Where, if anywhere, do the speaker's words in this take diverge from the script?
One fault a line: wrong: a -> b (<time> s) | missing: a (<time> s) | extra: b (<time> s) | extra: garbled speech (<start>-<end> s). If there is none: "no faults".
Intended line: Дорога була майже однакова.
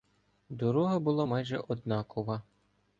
no faults